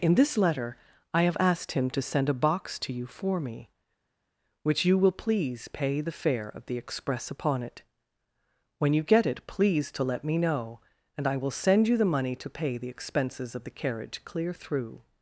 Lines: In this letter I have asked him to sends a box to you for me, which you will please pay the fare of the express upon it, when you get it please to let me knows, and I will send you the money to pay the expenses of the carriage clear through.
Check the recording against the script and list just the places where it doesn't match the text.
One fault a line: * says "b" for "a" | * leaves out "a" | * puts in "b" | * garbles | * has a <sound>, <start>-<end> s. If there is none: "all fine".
* says "send" for "sends"
* says "know" for "knows"